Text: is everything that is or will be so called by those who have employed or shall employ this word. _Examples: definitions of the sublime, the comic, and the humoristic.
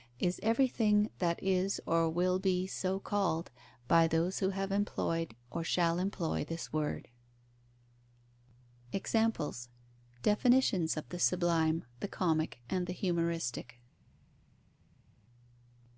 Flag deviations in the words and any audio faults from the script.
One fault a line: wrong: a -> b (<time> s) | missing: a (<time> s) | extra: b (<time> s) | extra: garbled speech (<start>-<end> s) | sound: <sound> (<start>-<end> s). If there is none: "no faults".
no faults